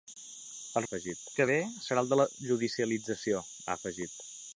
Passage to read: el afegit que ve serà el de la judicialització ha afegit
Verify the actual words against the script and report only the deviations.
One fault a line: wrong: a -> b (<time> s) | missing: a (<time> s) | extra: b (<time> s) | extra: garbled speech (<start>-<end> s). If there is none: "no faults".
no faults